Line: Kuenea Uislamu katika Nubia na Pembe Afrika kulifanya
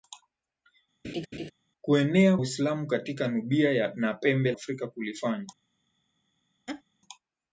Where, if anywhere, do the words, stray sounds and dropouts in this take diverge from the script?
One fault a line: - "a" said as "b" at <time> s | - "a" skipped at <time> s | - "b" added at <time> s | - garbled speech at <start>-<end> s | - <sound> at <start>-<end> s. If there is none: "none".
- laugh at 1.0-1.5 s
- laugh at 6.7-6.8 s